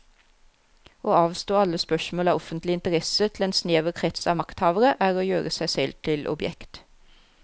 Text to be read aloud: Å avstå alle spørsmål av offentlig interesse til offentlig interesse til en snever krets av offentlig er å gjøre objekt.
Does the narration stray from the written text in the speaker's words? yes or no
yes